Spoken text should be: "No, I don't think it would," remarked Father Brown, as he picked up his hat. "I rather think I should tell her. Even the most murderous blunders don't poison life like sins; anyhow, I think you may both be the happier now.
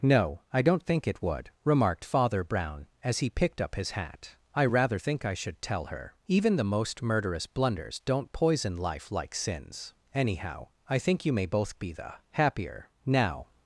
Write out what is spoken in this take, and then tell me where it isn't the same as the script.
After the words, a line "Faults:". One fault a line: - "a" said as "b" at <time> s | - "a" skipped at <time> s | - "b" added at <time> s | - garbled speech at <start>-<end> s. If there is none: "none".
"No, I don't think it would," remarked Father Brown, as he picked up his hat. "I rather think I should tell her. Even the most murderous blunders don't poison life like sins; anyhow, I think you may both be the happier now.
Faults:
none